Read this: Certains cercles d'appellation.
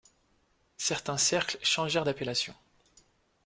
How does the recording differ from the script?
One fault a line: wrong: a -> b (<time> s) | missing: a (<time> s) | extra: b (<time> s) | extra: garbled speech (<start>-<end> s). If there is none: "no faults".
extra: changèrent (1.6 s)